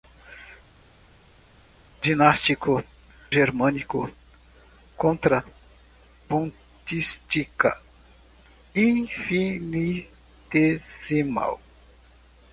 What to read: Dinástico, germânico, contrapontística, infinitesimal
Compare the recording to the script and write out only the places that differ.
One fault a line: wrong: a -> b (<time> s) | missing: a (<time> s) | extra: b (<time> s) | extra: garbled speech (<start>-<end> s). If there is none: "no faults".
no faults